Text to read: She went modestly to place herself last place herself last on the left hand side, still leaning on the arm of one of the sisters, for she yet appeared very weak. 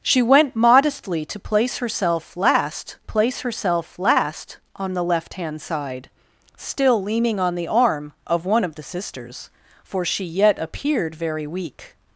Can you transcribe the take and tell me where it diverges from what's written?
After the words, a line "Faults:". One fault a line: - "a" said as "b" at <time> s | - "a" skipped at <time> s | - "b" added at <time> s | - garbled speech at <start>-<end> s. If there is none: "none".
She went modestly to place herself last place herself last on the left hand side, still leaning on the arm of one of the sisters, for she yet appeared very weak.
Faults:
none